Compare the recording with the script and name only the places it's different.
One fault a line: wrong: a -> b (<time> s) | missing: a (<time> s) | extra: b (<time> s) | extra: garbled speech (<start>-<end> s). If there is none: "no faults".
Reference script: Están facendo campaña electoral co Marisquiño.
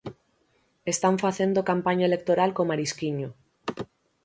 no faults